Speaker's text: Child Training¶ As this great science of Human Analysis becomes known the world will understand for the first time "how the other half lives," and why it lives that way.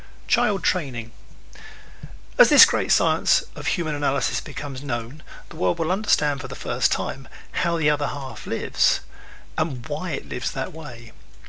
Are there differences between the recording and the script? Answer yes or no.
no